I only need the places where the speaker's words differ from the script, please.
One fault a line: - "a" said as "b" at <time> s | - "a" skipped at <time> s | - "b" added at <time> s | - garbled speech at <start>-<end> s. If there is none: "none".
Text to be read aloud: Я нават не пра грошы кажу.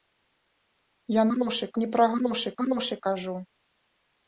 - "нават" said as "грошы" at 1.3 s
- "грошы" added at 2.6 s